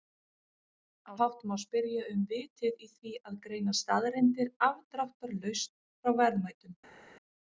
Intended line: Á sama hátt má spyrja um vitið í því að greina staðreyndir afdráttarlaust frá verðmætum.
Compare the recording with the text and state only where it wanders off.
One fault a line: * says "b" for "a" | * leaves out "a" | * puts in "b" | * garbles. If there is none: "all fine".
* leaves out "sama"